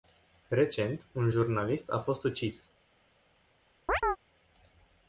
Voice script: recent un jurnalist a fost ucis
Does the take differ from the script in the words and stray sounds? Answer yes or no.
yes